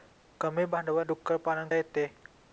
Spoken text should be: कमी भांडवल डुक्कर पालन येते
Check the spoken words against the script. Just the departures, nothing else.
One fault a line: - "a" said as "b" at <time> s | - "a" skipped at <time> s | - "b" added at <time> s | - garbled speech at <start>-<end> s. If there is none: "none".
none